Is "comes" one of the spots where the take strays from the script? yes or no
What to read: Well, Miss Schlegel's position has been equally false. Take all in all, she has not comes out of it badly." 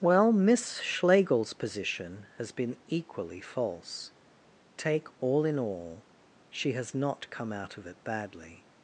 yes